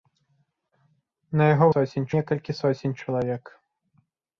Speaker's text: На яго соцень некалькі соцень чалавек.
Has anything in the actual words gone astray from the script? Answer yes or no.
no